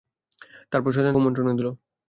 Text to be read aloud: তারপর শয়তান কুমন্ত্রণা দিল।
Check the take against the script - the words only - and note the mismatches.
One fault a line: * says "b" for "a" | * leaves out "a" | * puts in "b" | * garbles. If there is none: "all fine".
all fine